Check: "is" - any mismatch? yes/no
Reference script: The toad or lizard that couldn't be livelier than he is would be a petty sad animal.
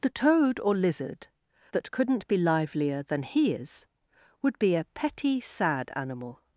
no